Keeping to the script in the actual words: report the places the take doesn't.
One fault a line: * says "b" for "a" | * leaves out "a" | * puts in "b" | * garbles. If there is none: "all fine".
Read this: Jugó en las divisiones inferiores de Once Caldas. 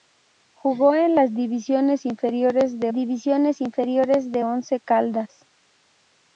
* puts in "divisiones inferiores de"